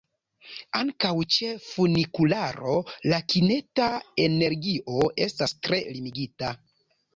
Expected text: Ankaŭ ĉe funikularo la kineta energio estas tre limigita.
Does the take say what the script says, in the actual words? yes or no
yes